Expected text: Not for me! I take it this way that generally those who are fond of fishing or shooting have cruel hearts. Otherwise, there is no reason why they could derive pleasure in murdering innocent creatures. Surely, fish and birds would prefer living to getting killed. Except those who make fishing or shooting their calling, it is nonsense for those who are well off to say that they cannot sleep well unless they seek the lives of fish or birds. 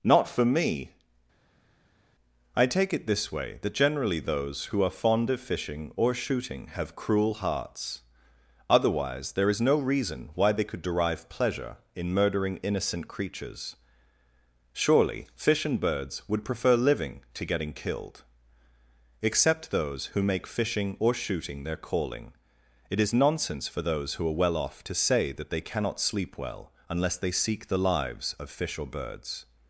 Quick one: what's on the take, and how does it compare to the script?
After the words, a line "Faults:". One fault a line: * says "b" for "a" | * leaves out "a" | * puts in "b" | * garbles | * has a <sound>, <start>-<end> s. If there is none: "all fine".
Not for me! I take it this way that generally those who are fond of fishing or shooting have cruel hearts. Otherwise, there is no reason why they could derive pleasure in murdering innocent creatures. Surely, fish and birds would prefer living to getting killed. Except those who make fishing or shooting their calling, it is nonsense for those who are well off to say that they cannot sleep well unless they seek the lives of fish or birds.
Faults:
all fine